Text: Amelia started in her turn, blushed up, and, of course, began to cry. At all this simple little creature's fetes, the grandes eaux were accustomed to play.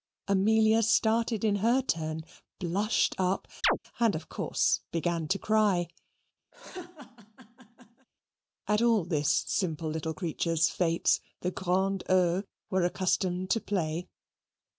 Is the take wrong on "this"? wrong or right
right